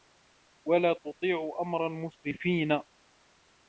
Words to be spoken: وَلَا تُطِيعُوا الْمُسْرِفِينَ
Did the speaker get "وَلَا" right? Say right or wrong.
right